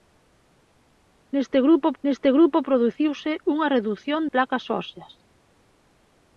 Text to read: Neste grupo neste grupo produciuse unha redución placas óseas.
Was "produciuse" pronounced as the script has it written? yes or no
yes